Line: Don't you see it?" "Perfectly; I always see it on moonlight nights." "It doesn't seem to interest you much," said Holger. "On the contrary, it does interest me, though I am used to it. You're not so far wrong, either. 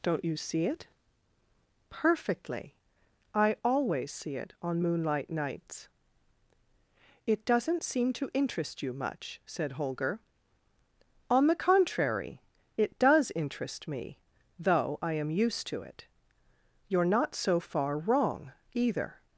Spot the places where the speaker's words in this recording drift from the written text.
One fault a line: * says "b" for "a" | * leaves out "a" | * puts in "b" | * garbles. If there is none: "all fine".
all fine